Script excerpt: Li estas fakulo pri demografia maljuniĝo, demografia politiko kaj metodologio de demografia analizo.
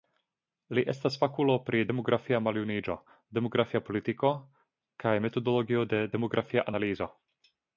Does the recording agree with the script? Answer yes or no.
yes